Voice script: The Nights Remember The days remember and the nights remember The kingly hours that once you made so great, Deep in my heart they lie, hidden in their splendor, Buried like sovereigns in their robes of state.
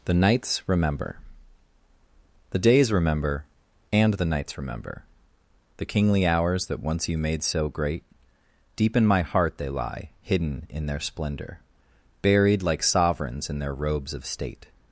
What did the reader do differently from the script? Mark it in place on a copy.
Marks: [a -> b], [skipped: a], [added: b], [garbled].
The Nights Remember The days remember and the nights remember The kingly hours that once you made so great, Deep in my heart they lie, hidden in their splendor, Buried like sovereigns in their robes of state.